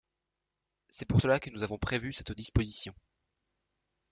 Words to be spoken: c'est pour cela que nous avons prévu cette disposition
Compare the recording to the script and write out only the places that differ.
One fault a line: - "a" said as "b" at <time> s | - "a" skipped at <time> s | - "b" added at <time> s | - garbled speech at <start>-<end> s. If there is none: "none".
none